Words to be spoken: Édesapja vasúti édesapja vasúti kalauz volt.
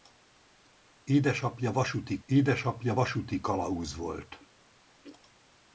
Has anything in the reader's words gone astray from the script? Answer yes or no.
no